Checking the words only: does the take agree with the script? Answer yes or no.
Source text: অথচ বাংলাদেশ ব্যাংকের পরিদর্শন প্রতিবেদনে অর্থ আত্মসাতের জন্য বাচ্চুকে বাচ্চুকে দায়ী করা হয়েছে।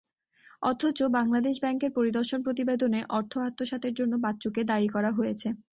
no